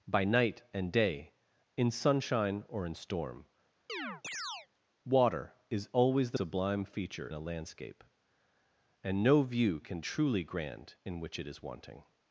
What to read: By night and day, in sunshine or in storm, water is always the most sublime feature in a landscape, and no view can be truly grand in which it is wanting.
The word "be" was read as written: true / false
false